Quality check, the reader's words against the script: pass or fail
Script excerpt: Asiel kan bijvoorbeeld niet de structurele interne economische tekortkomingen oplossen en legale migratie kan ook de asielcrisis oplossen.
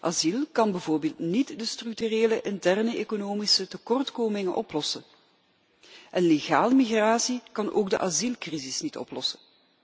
fail